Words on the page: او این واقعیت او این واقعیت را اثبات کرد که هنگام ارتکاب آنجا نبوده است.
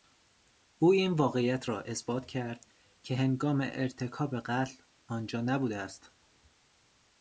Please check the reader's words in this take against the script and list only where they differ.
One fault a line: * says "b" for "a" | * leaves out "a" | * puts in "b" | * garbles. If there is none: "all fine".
* leaves out "او این واقعیت"
* puts in "قتل"